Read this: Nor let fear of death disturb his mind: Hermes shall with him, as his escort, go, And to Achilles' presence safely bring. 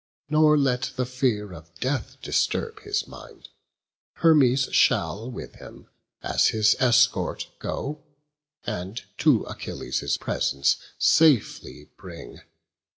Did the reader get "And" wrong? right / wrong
right